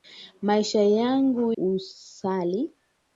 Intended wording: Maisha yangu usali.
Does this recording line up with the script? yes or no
yes